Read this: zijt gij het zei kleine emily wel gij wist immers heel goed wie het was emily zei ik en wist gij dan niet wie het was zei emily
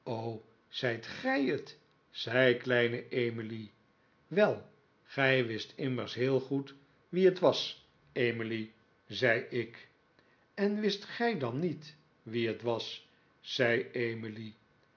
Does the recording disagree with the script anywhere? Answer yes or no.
no